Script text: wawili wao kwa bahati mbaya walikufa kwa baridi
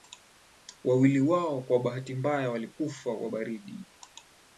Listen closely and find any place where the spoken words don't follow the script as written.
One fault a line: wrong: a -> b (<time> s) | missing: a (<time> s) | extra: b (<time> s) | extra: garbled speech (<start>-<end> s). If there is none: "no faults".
no faults